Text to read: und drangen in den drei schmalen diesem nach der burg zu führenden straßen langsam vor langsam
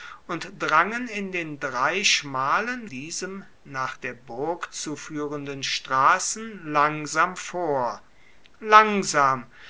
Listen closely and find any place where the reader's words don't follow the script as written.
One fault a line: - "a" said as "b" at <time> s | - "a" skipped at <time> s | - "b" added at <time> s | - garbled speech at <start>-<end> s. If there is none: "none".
none